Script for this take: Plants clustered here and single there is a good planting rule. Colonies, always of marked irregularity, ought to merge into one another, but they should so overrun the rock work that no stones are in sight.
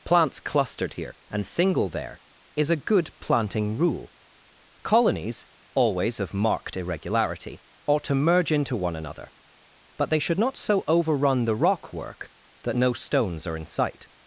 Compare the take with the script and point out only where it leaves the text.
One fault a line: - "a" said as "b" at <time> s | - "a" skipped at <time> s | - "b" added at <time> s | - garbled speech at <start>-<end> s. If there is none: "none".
- "not" added at 10.4 s